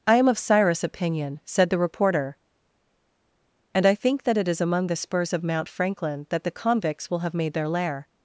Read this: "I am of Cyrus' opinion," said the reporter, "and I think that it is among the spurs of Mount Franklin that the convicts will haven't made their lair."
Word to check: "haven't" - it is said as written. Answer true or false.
false